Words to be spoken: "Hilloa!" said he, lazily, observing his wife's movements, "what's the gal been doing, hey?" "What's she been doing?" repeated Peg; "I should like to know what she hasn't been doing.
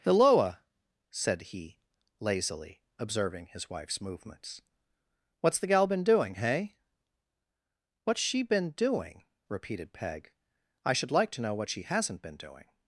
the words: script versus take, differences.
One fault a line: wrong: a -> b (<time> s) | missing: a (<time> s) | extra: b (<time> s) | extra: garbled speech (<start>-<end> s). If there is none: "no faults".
no faults